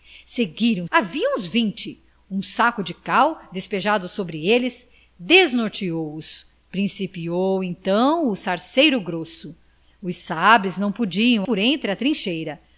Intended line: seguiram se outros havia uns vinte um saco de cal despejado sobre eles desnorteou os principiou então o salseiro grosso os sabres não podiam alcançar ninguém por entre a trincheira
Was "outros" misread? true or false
true